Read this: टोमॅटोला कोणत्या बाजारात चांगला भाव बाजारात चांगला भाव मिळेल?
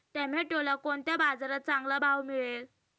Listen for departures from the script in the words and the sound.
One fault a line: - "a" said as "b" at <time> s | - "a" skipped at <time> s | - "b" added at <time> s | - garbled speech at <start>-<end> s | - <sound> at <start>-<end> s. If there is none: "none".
- "बाजारात चांगला भाव" skipped at 2.2 s